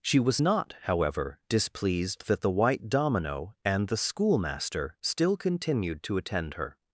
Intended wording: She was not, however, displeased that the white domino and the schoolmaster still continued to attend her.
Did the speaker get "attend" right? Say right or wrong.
right